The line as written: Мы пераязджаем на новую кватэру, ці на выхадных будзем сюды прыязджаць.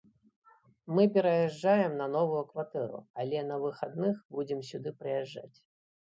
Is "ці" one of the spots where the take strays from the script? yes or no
yes